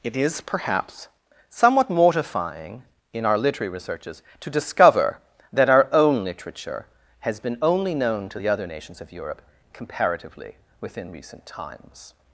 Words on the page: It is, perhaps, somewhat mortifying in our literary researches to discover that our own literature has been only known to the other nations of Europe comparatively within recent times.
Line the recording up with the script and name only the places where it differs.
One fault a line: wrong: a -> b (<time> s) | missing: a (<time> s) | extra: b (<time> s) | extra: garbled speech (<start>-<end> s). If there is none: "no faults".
no faults